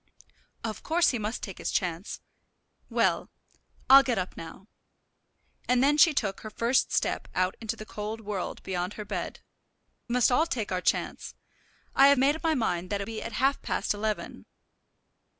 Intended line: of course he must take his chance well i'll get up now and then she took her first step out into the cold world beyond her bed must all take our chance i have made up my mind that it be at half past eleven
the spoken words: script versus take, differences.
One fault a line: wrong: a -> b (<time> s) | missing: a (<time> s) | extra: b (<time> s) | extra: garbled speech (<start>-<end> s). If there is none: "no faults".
no faults